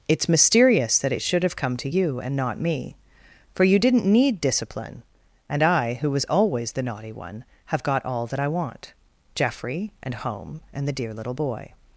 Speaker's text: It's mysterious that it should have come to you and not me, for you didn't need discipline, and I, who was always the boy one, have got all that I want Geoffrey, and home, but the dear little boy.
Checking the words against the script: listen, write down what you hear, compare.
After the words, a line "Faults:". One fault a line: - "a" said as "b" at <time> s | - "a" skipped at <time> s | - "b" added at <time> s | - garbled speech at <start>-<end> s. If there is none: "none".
It's mysterious that it should have come to you and not me, for you didn't need discipline, and I, who was always the naughty one, have got all that I want Geoffrey, and home, and the dear little boy.
Faults:
- "boy" said as "naughty" at 6.8 s
- "but" said as "and" at 10.7 s